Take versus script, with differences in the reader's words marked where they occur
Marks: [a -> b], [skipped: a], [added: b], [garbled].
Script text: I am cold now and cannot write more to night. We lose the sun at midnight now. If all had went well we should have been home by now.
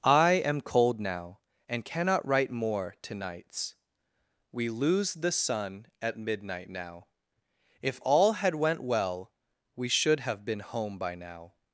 I am cold now and cannot write more to [night. -> nights] We lose the sun at midnight now. If all had went well we should have been home by now.